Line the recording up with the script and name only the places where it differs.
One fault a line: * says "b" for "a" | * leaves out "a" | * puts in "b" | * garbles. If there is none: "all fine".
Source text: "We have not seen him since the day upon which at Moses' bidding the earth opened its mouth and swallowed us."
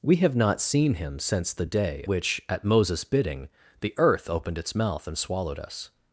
* leaves out "upon"